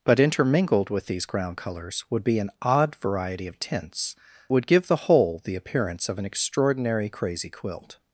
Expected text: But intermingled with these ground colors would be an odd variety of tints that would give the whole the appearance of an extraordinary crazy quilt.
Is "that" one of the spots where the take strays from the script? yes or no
yes